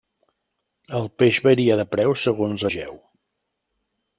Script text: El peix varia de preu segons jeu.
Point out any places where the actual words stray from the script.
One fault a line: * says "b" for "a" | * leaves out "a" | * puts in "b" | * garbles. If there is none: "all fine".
all fine